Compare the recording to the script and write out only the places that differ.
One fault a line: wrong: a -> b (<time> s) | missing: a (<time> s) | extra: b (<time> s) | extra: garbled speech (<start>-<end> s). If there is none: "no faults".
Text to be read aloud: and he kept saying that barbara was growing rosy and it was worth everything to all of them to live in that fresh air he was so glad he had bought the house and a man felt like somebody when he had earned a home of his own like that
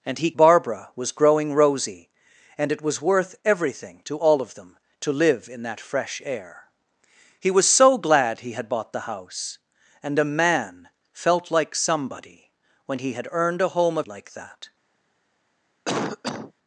missing: kept saying that (0.3 s)
missing: his own (14.1 s)